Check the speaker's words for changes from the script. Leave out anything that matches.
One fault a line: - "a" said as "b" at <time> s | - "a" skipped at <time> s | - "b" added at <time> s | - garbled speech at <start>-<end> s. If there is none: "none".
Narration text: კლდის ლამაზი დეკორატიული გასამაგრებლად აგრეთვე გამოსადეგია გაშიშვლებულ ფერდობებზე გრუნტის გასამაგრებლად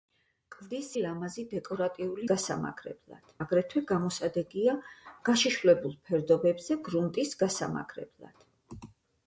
none